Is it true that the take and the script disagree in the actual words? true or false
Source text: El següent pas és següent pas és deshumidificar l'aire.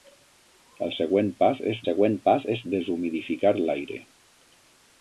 false